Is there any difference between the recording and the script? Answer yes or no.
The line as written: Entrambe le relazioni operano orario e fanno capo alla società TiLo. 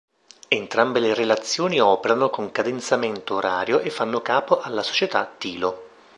yes